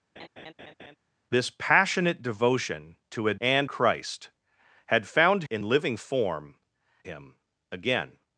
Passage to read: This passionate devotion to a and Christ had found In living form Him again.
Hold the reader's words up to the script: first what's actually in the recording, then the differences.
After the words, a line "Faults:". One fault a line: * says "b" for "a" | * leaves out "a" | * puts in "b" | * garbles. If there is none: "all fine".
This passionate devotion to a and Christ had found In living form Him again.
Faults:
all fine